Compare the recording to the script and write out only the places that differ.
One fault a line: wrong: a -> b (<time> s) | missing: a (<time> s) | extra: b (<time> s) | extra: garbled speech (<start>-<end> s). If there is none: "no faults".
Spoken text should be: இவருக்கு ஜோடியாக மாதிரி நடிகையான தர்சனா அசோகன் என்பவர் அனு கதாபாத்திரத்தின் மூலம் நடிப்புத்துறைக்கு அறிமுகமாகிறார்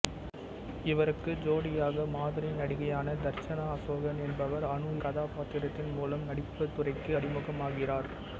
no faults